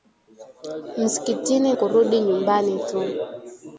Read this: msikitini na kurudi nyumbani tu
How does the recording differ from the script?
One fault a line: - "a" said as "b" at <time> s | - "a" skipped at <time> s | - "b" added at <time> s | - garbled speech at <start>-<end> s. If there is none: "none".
- "na" skipped at 1.7 s